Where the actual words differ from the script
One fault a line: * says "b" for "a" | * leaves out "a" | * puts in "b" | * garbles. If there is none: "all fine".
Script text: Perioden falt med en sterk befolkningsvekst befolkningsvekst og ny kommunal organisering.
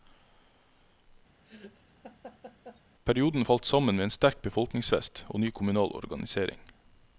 * puts in "sammen"
* leaves out "befolkningsvekst"